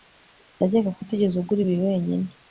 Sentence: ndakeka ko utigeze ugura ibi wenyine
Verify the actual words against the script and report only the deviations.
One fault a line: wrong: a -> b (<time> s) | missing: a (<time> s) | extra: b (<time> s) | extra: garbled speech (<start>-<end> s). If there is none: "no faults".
no faults